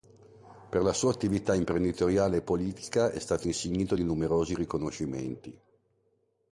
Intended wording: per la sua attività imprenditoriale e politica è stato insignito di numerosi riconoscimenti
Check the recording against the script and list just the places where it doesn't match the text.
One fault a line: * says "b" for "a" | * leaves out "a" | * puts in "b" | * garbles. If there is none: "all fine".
all fine